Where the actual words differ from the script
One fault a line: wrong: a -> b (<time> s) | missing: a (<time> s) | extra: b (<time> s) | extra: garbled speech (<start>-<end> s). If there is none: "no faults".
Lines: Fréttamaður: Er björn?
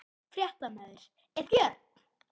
no faults